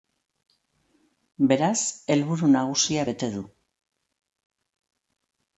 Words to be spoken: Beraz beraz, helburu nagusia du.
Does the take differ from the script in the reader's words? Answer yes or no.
yes